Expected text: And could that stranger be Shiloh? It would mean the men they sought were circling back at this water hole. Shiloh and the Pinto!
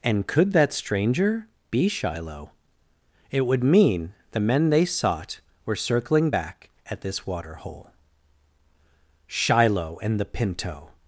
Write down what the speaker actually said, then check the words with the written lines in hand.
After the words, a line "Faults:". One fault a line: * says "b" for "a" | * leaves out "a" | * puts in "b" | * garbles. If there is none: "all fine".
And could that stranger be Shiloh? It would mean the men they sought were circling back at this water hole. Shiloh and the Pinto!
Faults:
all fine